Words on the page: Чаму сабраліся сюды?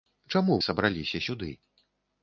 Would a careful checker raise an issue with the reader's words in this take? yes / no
no